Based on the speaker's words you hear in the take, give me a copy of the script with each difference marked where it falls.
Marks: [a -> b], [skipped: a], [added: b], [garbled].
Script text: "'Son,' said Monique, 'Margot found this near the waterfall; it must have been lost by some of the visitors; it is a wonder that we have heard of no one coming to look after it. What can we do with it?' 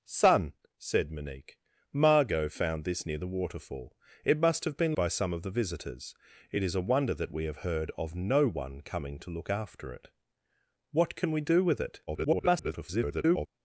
"'Son,' said Monique, 'Margot found this near the waterfall; it must have been [skipped: lost] by some of the visitors; it is a wonder that we have heard of no one coming to look after it. What can we do with it?' [garbled]